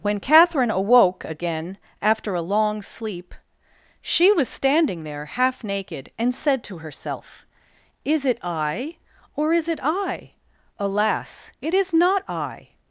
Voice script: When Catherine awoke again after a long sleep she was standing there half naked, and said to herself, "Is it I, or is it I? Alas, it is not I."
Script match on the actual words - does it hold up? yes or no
yes